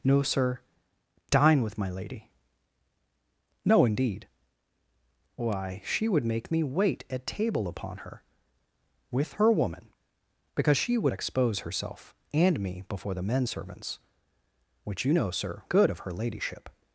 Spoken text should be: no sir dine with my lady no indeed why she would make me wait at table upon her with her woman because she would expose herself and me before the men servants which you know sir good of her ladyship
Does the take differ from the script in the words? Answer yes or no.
no